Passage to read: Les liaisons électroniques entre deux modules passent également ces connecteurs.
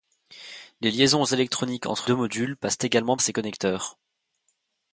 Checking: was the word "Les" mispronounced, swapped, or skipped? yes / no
no